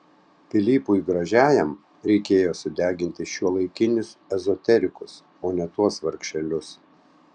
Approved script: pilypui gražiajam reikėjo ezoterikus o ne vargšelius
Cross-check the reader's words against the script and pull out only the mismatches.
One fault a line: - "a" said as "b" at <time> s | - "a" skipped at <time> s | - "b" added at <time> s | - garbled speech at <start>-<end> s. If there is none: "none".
- "sudeginti šiuolaikinius" added at 2.6 s
- "tuos" added at 5.8 s